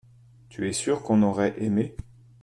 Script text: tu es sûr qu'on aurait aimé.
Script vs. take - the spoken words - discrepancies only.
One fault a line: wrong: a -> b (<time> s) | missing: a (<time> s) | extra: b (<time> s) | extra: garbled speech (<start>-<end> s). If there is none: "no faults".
no faults